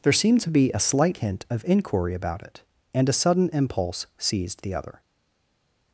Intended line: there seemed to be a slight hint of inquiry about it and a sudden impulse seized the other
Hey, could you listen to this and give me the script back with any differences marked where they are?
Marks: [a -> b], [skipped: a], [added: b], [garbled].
there seemed to be a slight hint of inquiry about it and a sudden impulse seized the other